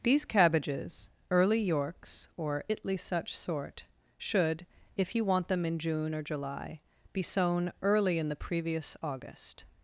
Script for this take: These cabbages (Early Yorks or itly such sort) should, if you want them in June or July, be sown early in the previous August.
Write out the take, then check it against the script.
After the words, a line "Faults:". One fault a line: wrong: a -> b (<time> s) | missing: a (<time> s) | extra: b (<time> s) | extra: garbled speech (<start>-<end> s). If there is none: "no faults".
These cabbages (Early Yorks or itly such sort) should, if you want them in June or July, be sown early in the previous August.
Faults:
no faults